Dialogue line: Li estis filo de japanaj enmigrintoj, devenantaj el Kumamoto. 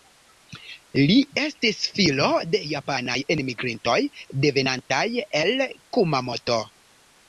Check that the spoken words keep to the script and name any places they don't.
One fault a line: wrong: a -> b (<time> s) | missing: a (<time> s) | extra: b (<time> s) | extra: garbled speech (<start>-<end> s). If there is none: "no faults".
no faults